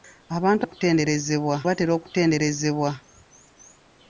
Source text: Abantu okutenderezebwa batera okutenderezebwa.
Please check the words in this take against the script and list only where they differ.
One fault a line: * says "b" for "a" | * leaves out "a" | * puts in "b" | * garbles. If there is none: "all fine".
all fine